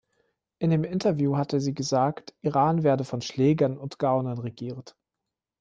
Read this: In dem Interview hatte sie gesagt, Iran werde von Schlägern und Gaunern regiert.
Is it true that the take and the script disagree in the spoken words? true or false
false